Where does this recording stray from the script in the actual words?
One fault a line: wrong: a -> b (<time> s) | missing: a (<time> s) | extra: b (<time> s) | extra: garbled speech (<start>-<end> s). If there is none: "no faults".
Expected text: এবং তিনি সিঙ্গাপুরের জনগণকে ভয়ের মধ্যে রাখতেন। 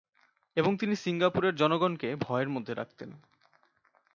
no faults